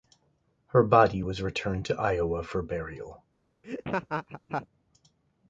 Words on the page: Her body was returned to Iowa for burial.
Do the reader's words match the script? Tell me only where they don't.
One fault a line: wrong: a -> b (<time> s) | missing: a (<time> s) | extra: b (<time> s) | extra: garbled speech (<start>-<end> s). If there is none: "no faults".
no faults